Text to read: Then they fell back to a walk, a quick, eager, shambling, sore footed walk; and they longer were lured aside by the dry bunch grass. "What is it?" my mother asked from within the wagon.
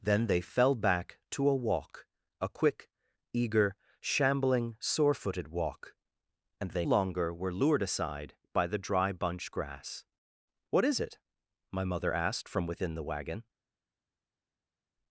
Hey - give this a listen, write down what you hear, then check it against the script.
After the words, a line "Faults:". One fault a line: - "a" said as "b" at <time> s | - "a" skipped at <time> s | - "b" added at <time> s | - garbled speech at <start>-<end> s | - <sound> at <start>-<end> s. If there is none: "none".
Then they fell back to a walk, a quick, eager, shambling, sore footed walk; and they longer were lured aside by the dry bunch grass. "What is it?" my mother asked from within the wagon.
Faults:
none